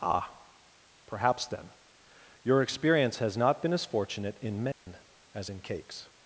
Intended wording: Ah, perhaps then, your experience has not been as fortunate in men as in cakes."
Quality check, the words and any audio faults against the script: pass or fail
fail